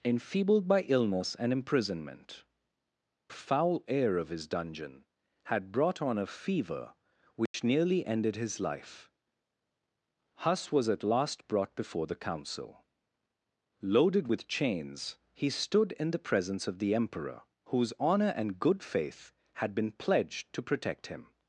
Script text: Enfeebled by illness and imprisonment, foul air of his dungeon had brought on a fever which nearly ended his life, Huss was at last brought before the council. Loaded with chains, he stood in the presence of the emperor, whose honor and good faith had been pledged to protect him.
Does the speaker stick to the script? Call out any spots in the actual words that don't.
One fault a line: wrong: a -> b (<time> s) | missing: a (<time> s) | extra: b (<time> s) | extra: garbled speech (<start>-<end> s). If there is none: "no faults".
no faults